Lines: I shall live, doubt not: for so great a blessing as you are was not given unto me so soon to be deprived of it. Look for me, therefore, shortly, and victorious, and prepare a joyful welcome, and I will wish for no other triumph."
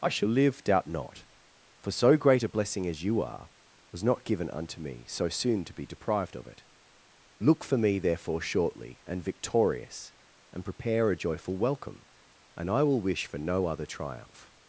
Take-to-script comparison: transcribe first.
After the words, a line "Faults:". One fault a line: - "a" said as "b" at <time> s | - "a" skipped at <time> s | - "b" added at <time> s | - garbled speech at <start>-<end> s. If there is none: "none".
I shall live, doubt not: for so great a blessing as you are was not given unto me so soon to be deprived of it. Look for me, therefore, shortly, and victorious, and prepare a joyful welcome, and I will wish for no other triumph."
Faults:
none